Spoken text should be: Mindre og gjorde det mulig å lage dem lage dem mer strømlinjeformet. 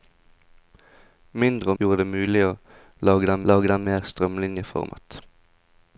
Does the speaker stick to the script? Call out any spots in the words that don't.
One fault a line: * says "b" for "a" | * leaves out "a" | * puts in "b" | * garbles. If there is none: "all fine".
all fine